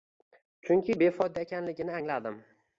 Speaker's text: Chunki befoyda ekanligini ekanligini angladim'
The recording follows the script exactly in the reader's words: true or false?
false